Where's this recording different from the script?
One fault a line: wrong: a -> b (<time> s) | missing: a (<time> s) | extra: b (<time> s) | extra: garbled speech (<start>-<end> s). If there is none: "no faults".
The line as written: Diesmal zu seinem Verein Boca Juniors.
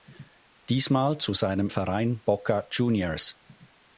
no faults